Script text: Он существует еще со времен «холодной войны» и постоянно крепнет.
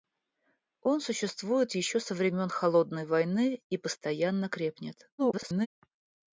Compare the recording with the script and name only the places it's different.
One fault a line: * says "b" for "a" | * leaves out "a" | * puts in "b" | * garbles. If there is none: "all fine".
* garbles